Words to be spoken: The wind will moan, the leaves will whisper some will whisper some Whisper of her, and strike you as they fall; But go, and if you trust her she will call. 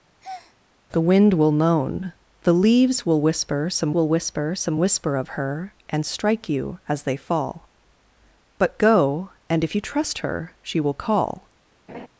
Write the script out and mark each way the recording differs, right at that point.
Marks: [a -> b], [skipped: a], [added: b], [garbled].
The wind will moan, the leaves will whisper some will whisper some Whisper of her, and strike you as they fall; But go, and if you trust her she will call.